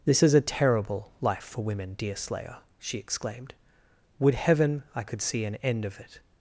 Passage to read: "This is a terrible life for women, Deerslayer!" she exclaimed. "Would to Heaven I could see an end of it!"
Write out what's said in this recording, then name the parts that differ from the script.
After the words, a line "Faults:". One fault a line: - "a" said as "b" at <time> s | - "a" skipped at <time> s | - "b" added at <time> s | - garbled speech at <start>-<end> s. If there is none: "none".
"This is a terrible life for women, Deerslayer!" she exclaimed. "Would Heaven I could see an end of it!"
Faults:
- "to" skipped at 4.4 s